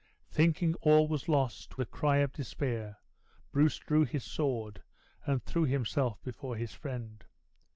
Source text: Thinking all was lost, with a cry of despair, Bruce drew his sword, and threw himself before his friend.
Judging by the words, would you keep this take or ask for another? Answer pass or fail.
fail